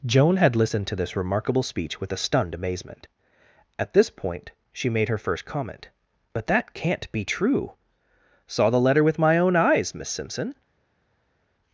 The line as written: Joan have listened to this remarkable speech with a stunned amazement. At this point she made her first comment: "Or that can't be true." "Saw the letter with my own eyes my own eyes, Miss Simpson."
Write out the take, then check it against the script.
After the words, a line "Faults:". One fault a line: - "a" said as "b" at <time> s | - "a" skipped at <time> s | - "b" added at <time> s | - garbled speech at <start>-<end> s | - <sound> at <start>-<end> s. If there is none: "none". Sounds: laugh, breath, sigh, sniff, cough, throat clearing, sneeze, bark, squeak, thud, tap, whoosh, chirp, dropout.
Joan had listened to this remarkable speech with a stunned amazement. At this point she made her first comment: "But that can't be true." "Saw the letter with my own eyes, Miss Simpson."
Faults:
- "have" said as "had" at 0.4 s
- "Or" said as "But" at 6.3 s
- "my own eyes" skipped at 9.9 s